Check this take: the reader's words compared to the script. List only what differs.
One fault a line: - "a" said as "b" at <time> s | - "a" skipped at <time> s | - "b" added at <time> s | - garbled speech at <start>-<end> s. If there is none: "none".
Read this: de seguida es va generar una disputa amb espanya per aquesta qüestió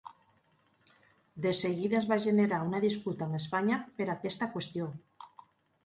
none